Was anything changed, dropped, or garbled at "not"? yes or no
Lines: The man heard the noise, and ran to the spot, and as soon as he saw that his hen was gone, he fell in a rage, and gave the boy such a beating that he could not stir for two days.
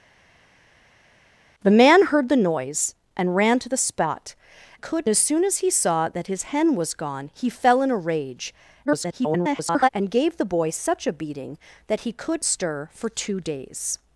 yes